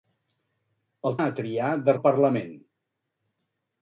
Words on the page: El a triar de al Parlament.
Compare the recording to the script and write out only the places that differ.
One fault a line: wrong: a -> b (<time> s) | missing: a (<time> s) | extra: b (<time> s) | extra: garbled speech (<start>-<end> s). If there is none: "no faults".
no faults